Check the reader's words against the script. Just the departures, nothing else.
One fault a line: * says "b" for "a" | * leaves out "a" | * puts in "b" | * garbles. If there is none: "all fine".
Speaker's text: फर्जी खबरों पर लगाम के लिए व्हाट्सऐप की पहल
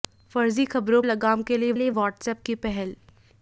* leaves out "पर"
* puts in "लिए"